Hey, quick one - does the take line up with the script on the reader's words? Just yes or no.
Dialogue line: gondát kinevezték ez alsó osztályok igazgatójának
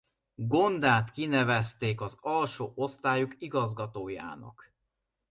no